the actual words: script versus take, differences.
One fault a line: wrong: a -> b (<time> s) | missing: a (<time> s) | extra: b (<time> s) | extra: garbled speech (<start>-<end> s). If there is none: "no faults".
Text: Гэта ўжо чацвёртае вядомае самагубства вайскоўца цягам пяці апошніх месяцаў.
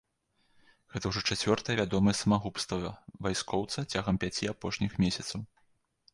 no faults